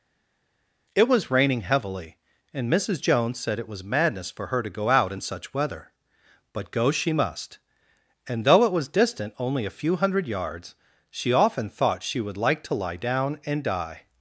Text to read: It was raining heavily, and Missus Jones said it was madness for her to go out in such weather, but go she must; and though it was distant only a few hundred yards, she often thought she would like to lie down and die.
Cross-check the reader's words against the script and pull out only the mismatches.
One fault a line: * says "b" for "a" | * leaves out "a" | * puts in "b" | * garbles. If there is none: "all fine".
all fine